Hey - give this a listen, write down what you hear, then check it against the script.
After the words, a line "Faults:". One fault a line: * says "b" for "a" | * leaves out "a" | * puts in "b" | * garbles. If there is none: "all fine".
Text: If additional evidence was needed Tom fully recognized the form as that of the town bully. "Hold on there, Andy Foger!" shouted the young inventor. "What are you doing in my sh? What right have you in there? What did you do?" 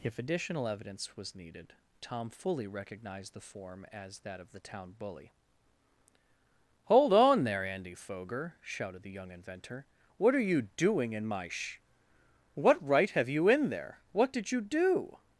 If additional evidence was needed Tom fully recognized the form as that of the town bully. "Hold on there, Andy Foger!" shouted the young inventor. "What are you doing in my sh? What right have you in there? What did you do?"
Faults:
all fine